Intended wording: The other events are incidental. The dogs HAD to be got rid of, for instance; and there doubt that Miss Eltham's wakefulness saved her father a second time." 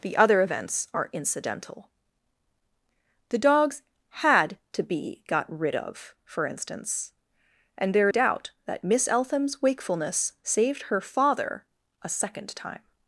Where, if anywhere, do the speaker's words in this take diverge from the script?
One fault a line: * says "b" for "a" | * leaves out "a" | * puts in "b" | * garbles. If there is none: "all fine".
all fine